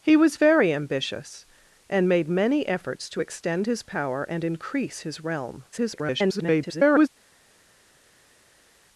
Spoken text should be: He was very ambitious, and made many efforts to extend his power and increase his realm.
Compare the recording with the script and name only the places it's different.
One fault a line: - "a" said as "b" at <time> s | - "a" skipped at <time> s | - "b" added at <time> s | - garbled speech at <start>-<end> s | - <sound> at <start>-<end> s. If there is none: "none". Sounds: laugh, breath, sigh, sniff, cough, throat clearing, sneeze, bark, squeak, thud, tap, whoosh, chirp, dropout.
- garbled speech at 5.7-7.1 s